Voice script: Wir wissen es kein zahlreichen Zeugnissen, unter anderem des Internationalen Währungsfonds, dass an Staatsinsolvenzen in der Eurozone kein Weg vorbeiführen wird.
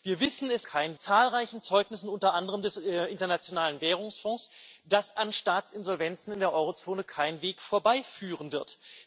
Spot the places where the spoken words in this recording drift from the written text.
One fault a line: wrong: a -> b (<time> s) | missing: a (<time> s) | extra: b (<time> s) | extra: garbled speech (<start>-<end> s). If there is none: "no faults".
no faults